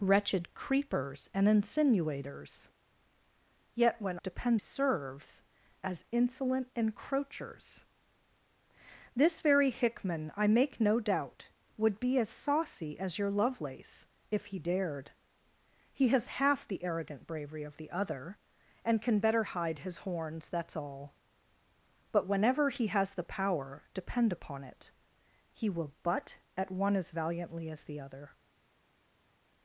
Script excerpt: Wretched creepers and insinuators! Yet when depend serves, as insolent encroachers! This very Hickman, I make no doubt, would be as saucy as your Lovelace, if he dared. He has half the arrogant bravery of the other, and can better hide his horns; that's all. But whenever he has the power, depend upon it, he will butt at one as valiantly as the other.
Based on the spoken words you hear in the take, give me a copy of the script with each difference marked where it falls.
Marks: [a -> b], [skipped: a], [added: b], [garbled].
Wretched creepers and insinuators! Yet when depend serves, as insolent encroachers! This very Hickman, I make no doubt, would be as saucy as your Lovelace, if he dared. He has half the arrogant bravery of the other, and can better hide his horns; that's all. But whenever he has the power, depend upon it, he will butt at one as valiantly as the other.